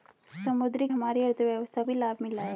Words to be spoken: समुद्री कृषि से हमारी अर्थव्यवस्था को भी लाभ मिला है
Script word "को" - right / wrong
wrong